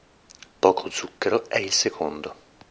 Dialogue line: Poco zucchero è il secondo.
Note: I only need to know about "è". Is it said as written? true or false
true